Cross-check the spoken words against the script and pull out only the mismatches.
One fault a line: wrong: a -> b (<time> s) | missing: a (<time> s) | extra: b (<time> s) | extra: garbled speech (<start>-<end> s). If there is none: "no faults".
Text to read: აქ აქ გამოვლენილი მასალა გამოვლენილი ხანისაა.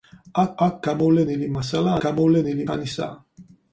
no faults